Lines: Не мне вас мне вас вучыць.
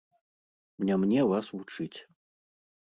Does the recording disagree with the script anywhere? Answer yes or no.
yes